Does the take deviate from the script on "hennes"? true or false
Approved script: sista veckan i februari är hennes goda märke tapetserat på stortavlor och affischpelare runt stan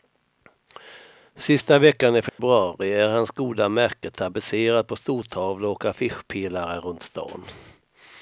true